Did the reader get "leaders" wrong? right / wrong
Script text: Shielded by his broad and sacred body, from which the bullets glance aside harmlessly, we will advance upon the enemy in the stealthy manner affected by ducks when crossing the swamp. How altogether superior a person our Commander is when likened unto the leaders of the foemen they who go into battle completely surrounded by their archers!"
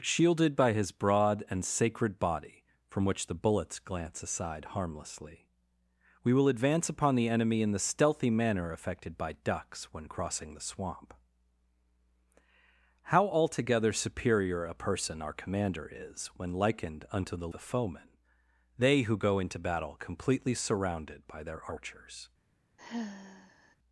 wrong